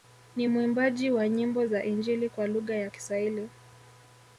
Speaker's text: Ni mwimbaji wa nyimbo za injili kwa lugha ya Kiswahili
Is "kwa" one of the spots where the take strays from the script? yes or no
no